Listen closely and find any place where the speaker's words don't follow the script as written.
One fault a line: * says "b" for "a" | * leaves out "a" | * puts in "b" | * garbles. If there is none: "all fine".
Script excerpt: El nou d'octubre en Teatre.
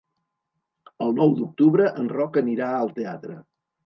* puts in "Roc anirà al"